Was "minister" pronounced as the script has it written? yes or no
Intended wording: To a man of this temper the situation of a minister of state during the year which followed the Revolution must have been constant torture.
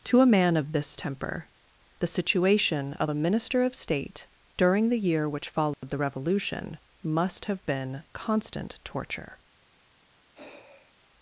yes